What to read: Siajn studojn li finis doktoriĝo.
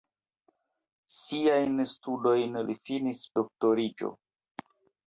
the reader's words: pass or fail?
pass